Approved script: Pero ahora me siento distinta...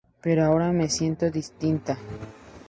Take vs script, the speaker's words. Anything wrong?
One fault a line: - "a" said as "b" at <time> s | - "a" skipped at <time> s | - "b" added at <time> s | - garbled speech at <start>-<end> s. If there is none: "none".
none